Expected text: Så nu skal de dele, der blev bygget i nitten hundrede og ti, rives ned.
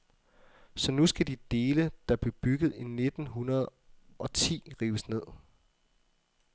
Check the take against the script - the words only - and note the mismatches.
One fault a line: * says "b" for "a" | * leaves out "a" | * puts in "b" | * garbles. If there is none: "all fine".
all fine